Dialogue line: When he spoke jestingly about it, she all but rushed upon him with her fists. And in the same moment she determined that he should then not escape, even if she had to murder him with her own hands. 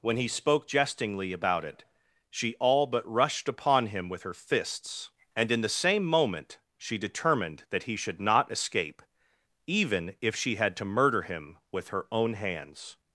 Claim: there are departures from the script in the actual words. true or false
true